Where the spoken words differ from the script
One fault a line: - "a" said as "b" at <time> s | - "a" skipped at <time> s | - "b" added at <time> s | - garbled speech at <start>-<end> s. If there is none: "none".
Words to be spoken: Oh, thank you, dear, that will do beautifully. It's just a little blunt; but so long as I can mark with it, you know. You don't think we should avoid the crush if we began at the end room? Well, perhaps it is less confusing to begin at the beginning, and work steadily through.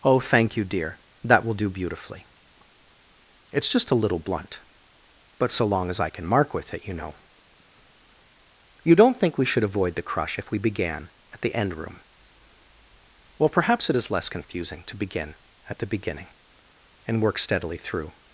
none